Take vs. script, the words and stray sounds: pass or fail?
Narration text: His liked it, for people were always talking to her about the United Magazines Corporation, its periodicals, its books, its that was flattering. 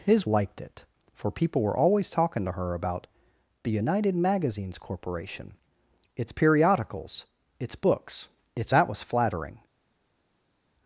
pass